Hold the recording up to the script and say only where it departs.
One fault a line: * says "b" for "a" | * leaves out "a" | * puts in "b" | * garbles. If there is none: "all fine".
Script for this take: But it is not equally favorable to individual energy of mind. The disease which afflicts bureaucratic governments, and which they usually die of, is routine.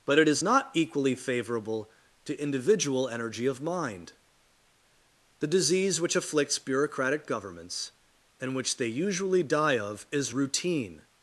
all fine